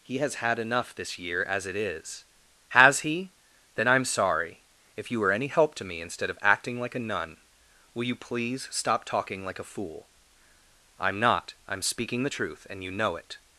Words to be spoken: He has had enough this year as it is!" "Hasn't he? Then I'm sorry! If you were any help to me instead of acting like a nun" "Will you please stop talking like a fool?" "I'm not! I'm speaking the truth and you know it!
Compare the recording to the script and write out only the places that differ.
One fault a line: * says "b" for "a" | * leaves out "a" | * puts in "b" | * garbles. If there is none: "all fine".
* says "Has" for "Hasn't"